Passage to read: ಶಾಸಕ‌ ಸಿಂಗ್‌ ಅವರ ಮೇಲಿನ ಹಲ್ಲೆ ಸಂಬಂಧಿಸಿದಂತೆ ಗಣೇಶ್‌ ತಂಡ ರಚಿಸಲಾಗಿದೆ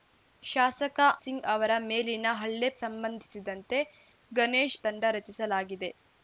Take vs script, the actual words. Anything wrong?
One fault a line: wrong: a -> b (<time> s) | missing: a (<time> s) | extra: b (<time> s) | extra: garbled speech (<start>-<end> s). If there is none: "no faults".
no faults